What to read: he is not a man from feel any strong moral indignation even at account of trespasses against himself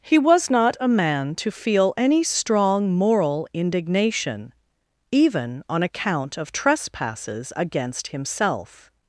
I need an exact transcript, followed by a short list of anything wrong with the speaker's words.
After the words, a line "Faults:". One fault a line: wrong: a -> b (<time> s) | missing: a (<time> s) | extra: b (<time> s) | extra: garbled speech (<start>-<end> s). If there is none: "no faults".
he was not a man to feel any strong moral indignation even on account of trespasses against himself
Faults:
wrong: is -> was (0.2 s)
wrong: from -> to (1.4 s)
wrong: at -> on (5.7 s)